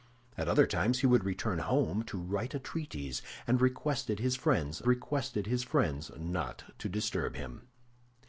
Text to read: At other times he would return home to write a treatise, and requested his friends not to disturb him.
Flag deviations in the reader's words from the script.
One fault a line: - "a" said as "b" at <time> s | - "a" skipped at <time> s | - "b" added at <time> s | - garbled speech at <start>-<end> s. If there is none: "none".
- "requested his friends" added at 4.9 s